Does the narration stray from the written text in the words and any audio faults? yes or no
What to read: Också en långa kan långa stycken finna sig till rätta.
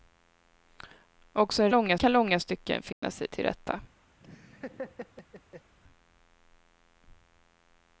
yes